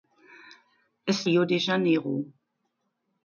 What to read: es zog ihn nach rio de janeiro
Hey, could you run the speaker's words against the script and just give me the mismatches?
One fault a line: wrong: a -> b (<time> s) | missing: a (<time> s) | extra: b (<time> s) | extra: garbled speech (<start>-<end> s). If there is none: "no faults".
missing: zog ihn nach (1.3 s)